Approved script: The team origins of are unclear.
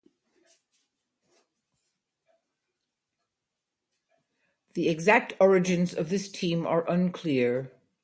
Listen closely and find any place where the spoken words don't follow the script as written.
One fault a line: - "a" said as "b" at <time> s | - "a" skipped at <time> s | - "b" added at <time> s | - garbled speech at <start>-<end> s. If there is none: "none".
- "team" said as "exact" at 4.9 s
- "this team" added at 6.1 s